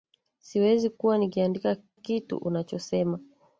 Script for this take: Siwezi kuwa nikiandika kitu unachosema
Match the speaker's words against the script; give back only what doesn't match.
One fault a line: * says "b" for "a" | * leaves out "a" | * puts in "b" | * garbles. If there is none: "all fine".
all fine